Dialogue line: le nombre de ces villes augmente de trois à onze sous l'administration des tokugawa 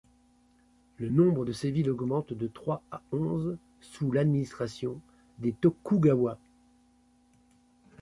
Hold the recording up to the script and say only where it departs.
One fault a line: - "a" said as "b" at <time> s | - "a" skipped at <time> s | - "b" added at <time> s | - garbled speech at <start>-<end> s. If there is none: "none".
none